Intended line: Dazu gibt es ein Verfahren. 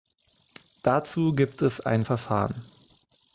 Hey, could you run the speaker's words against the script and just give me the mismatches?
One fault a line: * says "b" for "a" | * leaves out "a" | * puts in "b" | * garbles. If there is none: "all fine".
all fine